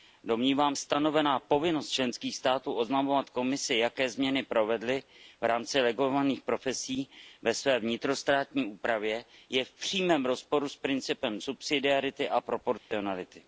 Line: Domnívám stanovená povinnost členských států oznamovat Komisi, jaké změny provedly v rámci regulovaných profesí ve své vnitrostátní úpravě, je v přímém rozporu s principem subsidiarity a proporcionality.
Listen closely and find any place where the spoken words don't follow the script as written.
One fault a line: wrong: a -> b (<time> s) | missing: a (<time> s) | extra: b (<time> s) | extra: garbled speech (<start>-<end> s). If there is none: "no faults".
no faults